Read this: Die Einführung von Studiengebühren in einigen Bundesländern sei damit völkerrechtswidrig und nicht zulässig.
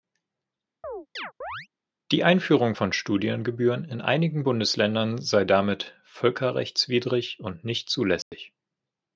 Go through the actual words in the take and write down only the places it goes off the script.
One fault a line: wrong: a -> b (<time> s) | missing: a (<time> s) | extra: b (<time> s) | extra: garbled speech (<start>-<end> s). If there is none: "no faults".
no faults